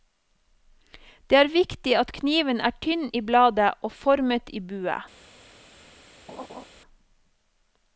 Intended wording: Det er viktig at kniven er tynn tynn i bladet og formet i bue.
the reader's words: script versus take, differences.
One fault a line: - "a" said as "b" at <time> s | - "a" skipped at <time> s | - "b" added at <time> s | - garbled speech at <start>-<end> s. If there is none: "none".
- "tynn" skipped at 3.0 s